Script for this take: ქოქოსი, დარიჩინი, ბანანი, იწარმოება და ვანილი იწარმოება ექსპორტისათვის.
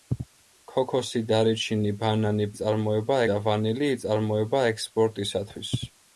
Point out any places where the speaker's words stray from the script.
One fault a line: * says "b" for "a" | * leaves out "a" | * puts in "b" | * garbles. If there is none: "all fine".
all fine